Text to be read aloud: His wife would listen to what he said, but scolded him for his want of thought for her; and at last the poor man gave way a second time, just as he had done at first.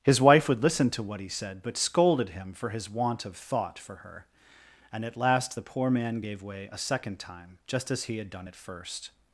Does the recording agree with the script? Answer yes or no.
yes